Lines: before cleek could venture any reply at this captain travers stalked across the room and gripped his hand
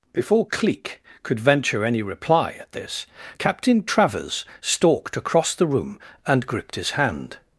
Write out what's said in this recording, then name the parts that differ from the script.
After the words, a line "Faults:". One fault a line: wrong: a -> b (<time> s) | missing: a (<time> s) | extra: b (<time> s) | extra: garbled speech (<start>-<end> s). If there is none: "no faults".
before cleek could venture any reply at this captain travers stalked across the room and gripped his hand
Faults:
no faults